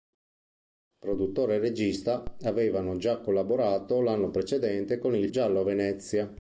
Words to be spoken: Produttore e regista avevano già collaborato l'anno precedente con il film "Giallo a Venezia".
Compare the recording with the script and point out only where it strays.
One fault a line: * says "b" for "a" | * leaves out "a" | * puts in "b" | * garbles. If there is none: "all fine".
* leaves out "film"